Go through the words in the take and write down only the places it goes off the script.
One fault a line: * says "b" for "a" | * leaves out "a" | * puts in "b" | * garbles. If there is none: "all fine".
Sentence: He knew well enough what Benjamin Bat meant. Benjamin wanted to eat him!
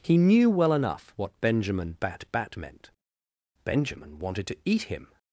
* puts in "Bat"